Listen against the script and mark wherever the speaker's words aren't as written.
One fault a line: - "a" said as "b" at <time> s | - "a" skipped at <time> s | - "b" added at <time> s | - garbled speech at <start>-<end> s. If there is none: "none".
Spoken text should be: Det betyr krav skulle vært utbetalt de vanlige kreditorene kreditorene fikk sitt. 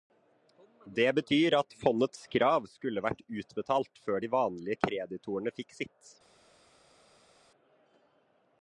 - "at fondets" added at 1.6 s
- "før" added at 4.1 s
- "kreditorene" skipped at 5.5 s